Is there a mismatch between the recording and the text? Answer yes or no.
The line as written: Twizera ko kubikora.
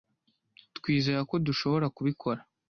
yes